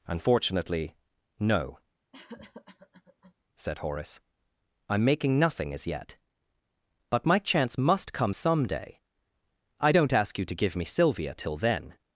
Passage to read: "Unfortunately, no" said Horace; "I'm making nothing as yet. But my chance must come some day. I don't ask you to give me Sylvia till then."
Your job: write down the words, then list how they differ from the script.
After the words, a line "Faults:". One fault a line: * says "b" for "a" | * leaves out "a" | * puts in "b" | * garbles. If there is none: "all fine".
"Unfortunately, no" said Horace; "I'm making nothing as yet. But my chance must come some day. I don't ask you to give me Sylvia till then."
Faults:
all fine